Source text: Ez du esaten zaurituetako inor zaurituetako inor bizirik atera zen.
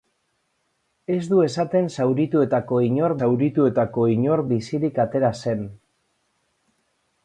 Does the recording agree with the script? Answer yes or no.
yes